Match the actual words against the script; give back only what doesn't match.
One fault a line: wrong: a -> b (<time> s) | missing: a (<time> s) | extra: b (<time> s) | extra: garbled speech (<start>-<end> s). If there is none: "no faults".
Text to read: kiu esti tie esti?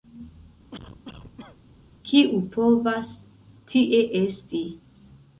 wrong: esti -> povas (2.6 s)